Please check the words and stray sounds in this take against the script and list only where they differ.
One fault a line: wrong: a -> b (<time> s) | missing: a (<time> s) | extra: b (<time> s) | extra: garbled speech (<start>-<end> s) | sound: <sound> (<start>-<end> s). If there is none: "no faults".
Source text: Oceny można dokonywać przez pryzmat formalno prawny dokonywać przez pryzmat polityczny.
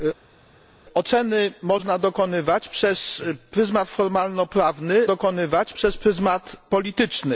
no faults